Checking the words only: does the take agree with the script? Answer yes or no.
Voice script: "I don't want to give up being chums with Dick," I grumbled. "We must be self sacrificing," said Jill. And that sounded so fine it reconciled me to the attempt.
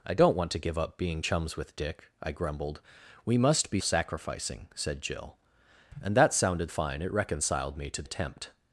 no